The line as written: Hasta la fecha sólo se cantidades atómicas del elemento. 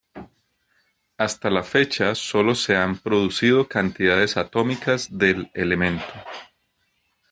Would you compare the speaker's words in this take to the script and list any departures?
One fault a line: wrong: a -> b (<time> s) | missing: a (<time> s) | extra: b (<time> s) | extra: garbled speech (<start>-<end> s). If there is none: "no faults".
extra: han producido (2.8 s)